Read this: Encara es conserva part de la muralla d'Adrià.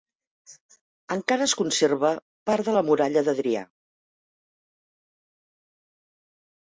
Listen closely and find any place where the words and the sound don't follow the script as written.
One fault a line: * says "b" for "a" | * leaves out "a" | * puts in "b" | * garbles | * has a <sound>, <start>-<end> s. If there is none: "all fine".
all fine